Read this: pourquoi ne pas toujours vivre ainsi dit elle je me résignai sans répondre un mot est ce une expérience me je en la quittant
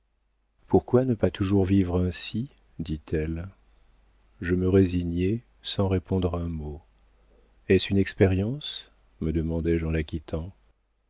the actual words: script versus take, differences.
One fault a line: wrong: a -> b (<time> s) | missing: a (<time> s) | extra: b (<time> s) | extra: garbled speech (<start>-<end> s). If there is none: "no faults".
extra: demandai (9.3 s)